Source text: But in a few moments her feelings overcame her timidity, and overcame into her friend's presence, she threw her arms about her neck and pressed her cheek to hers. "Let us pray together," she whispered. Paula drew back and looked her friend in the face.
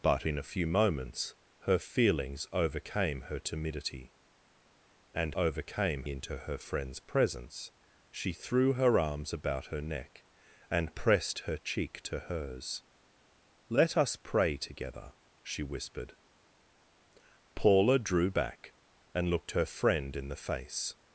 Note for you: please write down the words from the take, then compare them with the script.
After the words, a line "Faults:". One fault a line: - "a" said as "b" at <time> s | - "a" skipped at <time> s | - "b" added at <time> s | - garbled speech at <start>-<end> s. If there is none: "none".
But in a few moments her feelings overcame her timidity, and overcame into her friend's presence, she threw her arms about her neck and pressed her cheek to hers. "Let us pray together," she whispered. Paula drew back and looked her friend in the face.
Faults:
none